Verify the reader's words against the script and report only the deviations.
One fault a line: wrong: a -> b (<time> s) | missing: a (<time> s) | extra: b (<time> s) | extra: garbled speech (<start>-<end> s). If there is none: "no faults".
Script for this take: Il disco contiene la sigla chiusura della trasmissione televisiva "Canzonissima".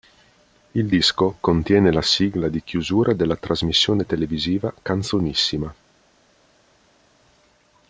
extra: di (2.5 s)